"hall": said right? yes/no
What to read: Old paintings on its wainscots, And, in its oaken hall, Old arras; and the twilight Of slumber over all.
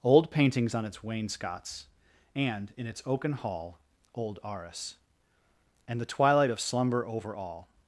yes